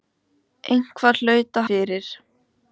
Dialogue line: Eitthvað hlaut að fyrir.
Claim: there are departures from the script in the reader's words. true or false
false